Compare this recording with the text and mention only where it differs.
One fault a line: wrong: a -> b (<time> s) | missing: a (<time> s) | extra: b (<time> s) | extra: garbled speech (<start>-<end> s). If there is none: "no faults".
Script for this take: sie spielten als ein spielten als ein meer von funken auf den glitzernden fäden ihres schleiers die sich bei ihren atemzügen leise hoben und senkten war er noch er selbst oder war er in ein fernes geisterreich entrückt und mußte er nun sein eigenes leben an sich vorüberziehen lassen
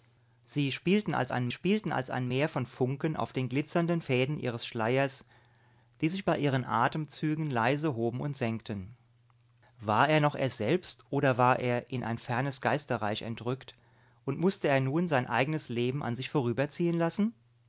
no faults